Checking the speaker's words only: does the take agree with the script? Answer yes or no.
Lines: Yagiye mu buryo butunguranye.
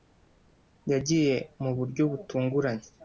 yes